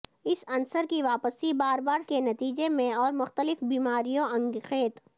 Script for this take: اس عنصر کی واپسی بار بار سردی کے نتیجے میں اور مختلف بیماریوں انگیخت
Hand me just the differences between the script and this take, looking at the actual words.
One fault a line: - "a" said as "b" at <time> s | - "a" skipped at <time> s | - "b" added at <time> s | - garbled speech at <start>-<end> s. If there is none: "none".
- "سردی" skipped at 2.0 s